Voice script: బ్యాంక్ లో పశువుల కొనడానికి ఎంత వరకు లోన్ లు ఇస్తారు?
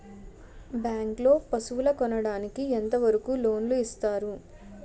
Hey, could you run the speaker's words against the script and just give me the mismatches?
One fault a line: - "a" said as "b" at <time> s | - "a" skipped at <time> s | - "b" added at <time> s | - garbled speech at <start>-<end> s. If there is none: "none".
none